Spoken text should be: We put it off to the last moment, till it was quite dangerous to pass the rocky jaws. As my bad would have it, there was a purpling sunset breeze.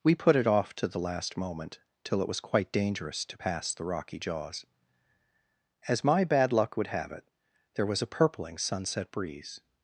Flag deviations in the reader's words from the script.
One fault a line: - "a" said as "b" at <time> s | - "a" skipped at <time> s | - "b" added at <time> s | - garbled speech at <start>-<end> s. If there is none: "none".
- "luck" added at 6.5 s